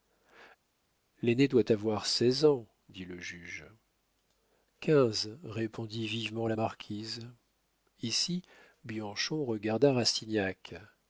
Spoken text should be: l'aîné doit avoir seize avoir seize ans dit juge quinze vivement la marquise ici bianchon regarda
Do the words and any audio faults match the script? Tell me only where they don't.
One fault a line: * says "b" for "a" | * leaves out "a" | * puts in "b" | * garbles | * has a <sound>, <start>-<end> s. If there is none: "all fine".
* leaves out "avoir seize"
* puts in "le"
* puts in "répondit"